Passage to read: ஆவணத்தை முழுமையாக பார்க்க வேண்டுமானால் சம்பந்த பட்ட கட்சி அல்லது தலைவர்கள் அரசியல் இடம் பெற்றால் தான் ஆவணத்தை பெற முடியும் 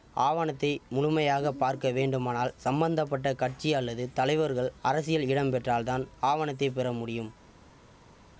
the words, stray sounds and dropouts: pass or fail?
pass